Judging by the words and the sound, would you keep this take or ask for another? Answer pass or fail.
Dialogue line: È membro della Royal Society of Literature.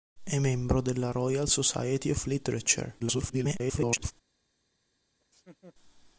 fail